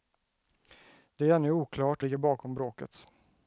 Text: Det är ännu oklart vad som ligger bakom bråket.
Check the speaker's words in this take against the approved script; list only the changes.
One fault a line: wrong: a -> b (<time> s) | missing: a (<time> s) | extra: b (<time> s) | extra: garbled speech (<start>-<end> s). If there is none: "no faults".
missing: vad som (2.0 s)